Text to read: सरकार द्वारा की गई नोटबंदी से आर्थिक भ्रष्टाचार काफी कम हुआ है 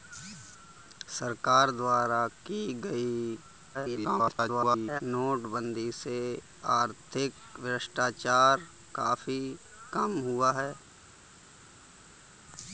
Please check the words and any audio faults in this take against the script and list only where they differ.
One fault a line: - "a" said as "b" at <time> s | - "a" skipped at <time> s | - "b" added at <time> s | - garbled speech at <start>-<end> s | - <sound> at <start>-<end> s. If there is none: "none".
- garbled speech at 3.7-5.0 s